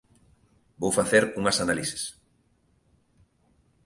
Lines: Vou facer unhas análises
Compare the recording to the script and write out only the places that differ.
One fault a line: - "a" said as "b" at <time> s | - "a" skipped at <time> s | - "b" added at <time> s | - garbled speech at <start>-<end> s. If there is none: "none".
none